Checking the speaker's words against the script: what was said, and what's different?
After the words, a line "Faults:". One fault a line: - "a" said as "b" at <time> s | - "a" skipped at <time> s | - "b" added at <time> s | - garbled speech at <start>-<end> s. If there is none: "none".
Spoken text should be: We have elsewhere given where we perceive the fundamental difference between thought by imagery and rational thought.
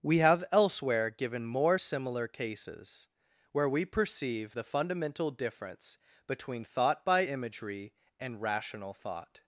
We have elsewhere given more similar cases, where we perceive the fundamental difference between thought by imagery and rational thought.
Faults:
- "more similar cases" added at 1.4 s